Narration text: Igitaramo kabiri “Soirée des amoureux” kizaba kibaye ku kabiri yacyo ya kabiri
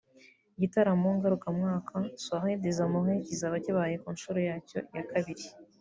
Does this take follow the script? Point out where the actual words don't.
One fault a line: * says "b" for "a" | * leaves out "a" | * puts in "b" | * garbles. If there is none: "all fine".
* says "ngarukamwaka" for "kabiri"
* says "nshuro" for "kabiri"